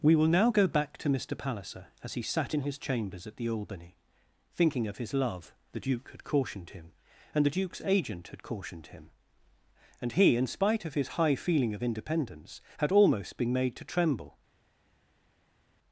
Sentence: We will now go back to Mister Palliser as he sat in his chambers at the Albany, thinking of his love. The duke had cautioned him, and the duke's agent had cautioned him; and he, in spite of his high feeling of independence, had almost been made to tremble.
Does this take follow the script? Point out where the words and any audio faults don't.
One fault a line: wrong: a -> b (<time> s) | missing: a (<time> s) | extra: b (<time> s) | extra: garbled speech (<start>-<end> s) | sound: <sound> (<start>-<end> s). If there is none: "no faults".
no faults